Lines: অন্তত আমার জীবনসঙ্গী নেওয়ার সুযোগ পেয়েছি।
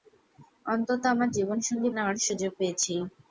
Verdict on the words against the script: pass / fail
pass